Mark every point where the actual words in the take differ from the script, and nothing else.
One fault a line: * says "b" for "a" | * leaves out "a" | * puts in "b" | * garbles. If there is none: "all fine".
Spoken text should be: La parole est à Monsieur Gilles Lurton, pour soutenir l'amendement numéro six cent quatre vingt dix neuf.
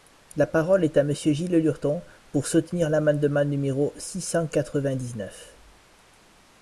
all fine